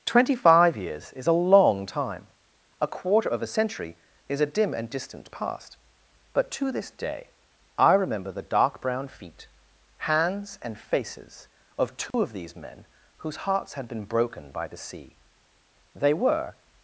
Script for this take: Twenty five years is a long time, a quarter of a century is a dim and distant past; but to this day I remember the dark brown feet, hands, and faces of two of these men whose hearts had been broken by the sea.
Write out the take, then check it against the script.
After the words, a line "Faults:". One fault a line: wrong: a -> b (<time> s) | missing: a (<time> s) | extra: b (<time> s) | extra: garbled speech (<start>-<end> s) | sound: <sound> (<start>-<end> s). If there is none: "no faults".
Twenty five years is a long time, a quarter of a century is a dim and distant past; but to this day I remember the dark brown feet, hands, and faces of two of these men whose hearts had been broken by the sea. They were
Faults:
sound: dropout (12.1-12.1 s)
extra: They were (15.9 s)